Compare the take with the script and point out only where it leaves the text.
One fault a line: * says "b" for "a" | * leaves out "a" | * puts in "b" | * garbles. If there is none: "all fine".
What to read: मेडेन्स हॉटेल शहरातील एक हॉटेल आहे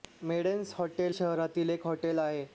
all fine